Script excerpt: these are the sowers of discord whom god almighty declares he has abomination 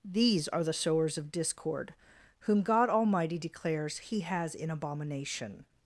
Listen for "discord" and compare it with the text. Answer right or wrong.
right